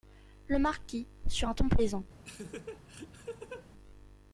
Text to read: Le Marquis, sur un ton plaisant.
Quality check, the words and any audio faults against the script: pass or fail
fail